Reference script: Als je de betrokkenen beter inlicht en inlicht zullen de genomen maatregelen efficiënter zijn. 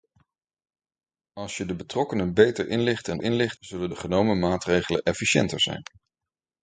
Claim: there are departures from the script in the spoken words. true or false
false